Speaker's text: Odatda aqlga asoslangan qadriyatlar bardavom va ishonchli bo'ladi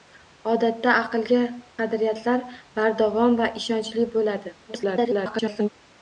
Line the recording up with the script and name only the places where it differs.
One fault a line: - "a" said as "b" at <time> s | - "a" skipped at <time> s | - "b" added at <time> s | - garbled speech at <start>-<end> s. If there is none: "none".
- "asoslangan" skipped at 1.4 s
- garbled speech at 4.7-5.7 s